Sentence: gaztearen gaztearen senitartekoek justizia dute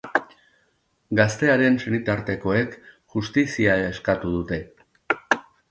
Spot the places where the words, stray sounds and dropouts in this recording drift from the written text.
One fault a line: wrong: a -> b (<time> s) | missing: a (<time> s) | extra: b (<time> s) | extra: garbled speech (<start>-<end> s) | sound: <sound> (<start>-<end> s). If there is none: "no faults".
missing: gaztearen (1.8 s)
extra: eskatu (3.9 s)